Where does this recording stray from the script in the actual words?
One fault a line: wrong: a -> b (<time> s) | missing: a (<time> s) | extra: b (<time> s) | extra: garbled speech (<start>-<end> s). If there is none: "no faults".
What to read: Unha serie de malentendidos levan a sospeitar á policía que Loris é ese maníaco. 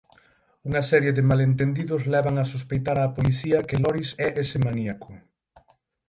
no faults